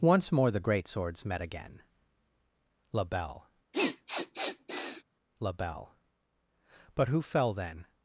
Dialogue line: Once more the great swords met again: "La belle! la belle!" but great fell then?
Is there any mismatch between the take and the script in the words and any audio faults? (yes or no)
yes